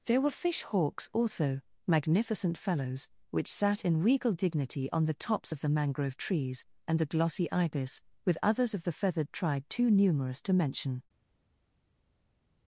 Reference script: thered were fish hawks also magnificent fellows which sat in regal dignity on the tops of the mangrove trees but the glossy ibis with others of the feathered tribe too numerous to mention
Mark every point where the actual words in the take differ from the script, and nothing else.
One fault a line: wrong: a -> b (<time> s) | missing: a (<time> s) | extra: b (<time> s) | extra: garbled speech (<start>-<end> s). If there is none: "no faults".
wrong: thered -> there (0.1 s)
wrong: but -> and (6.9 s)